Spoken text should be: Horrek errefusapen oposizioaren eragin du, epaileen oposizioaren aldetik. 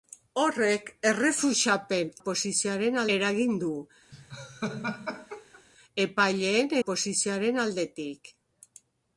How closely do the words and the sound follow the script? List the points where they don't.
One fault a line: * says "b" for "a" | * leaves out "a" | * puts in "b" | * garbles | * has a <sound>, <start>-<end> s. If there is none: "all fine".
* has a laugh, 4.1-5.6 s